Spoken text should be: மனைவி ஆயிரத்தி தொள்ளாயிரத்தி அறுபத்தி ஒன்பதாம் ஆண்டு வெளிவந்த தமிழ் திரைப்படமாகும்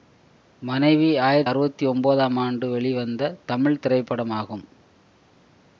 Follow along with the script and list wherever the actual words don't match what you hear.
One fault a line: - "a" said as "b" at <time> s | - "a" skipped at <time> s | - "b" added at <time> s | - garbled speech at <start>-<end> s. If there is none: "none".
- "தொள்ளாயிரத்தி" skipped at 1.5 s